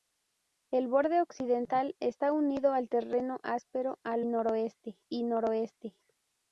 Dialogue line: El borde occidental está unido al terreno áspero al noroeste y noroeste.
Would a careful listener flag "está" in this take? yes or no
no